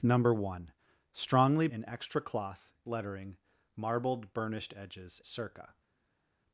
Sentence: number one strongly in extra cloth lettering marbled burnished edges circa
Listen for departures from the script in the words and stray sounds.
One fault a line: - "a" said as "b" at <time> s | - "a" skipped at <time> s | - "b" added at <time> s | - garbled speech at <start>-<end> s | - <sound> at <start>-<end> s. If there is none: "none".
none